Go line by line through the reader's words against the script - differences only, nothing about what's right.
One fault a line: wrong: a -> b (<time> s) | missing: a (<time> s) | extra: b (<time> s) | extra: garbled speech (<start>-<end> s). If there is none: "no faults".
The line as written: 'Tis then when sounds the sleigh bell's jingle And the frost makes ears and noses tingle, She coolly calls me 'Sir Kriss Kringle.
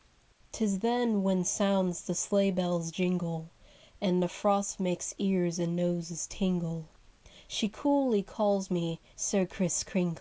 no faults